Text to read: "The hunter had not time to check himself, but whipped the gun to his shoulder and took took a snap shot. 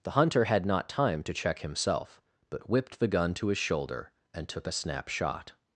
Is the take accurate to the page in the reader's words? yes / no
no